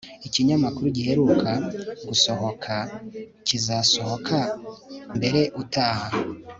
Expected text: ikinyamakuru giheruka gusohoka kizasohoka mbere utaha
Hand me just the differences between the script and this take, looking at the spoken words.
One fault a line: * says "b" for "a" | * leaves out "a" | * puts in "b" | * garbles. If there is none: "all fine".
all fine